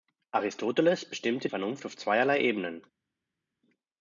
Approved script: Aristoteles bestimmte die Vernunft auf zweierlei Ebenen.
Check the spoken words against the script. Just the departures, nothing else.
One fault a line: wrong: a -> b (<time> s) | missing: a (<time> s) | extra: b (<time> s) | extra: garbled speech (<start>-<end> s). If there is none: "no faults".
missing: die (1.5 s)